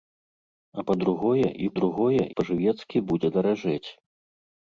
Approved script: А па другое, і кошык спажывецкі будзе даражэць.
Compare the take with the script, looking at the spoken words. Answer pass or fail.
fail